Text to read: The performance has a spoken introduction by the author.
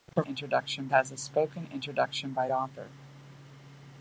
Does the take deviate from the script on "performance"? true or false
true